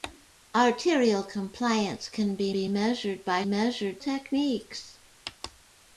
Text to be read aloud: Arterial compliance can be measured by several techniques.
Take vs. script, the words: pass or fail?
fail